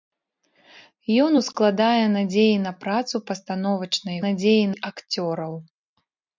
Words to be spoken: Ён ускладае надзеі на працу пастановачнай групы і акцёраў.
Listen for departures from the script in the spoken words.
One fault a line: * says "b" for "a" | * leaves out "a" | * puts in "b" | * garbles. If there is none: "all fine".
* says "надзеі" for "групы"